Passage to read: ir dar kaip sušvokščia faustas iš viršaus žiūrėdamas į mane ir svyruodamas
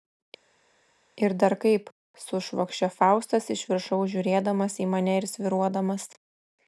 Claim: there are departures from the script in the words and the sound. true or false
false